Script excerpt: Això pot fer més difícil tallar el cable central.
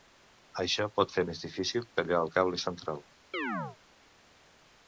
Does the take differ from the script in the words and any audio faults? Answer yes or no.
yes